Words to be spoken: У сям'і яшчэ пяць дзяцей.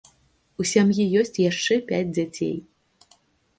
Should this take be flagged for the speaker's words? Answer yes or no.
yes